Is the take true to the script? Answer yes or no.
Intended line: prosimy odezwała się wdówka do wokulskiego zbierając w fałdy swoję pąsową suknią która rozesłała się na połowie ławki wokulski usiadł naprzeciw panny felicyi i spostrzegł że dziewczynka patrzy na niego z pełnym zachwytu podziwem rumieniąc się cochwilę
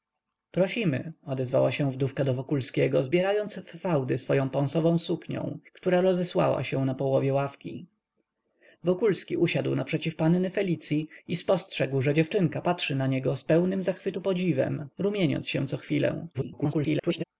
no